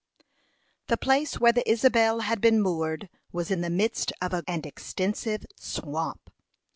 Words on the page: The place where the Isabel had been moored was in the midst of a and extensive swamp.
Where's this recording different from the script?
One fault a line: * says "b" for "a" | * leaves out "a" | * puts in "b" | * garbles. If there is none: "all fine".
all fine